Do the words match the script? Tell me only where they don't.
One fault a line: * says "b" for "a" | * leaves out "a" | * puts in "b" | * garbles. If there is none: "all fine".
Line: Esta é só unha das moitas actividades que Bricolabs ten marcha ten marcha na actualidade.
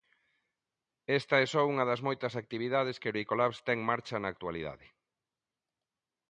* leaves out "ten marcha"